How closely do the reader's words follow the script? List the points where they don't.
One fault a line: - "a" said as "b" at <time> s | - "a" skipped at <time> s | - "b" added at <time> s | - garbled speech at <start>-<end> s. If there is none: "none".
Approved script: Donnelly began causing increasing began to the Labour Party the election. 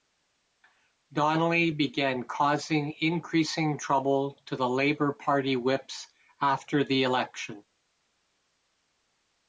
- "began" said as "trouble" at 3.8 s
- "whips after" added at 5.6 s